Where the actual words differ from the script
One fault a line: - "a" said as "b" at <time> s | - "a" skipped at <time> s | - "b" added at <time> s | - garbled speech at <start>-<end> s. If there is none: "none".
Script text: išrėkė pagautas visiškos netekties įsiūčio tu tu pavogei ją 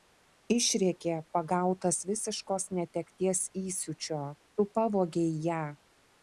- "tu" skipped at 4.7 s